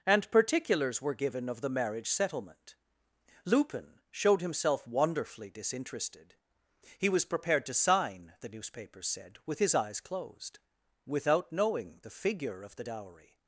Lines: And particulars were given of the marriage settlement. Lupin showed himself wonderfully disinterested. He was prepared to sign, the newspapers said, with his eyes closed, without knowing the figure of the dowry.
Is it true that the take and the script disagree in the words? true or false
false